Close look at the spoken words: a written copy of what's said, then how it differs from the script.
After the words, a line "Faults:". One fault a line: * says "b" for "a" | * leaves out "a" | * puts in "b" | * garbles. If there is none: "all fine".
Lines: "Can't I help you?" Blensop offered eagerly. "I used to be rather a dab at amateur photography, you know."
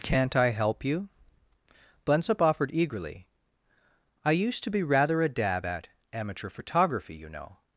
"Can't I help you?" Blensop offered eagerly. "I used to be rather a dab at amateur photography, you know."
Faults:
all fine